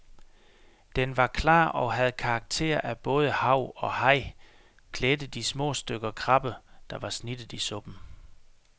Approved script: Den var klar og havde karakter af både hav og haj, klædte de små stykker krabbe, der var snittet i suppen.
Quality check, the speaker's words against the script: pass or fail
pass